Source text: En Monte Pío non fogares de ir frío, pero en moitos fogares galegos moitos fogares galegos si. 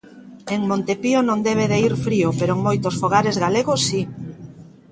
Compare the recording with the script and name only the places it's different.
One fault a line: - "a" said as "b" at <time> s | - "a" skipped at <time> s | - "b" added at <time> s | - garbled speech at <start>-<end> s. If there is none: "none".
- "fogares" said as "debe" at 1.5 s
- "moitos fogares galegos" skipped at 3.8 s